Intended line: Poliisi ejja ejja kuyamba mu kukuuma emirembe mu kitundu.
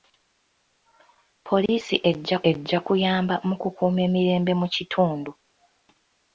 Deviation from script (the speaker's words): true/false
false